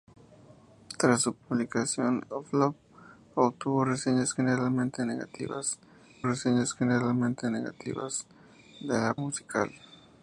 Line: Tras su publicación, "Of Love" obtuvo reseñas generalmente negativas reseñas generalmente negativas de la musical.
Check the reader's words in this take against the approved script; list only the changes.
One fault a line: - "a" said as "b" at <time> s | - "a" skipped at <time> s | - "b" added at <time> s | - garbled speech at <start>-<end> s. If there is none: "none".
none